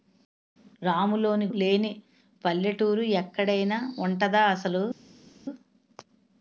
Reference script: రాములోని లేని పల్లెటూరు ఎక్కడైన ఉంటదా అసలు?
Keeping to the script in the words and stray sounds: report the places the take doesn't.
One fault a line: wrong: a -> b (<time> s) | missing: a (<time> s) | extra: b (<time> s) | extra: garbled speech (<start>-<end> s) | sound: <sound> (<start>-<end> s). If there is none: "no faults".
no faults